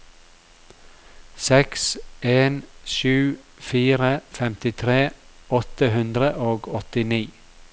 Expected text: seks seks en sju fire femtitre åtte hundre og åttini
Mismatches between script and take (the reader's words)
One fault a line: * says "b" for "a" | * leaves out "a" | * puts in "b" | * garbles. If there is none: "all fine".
* leaves out "seks"